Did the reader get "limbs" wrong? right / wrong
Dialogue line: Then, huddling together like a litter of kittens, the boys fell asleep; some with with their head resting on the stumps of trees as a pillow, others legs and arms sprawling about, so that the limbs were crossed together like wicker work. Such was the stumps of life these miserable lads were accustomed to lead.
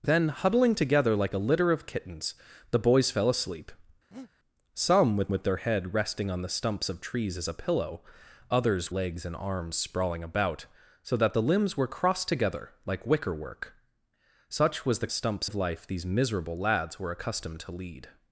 right